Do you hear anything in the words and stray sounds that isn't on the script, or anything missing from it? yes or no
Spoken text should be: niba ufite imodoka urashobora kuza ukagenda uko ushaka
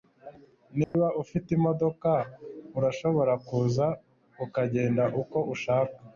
yes